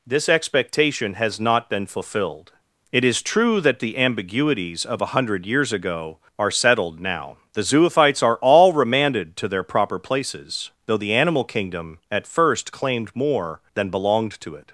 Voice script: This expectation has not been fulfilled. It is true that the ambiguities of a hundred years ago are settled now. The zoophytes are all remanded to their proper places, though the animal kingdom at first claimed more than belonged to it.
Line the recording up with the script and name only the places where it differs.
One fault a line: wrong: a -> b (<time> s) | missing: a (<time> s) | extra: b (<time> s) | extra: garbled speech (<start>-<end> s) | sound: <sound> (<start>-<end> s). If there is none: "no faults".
no faults